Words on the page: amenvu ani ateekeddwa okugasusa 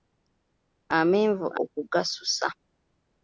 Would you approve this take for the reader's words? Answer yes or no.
no